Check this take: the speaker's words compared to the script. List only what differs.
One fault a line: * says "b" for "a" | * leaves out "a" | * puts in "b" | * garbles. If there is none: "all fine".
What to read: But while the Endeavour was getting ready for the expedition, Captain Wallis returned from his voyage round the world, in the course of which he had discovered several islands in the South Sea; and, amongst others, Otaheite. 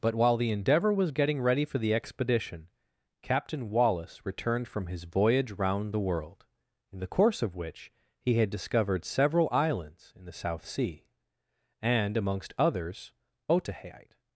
all fine